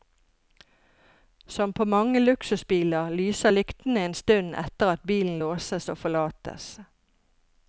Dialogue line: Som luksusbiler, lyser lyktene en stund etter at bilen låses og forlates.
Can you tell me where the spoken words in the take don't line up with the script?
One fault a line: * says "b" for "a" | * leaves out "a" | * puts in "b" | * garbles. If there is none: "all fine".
* puts in "på mange"